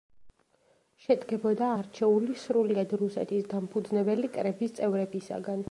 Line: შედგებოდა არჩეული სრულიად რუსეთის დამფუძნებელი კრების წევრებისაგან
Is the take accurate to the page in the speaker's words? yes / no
yes